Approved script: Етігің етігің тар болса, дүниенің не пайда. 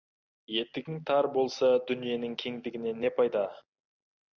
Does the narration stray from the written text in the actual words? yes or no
yes